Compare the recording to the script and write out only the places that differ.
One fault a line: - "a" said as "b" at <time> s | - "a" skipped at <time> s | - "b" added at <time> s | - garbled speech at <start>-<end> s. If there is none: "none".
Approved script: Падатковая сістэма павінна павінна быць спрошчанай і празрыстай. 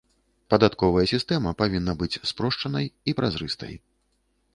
- "павінна" skipped at 2.0 s